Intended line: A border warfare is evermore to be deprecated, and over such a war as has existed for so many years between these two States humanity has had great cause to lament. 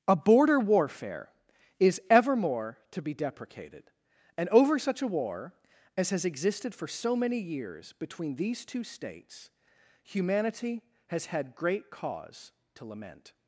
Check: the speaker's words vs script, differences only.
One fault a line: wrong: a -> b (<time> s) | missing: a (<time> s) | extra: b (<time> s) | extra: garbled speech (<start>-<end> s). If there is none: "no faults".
no faults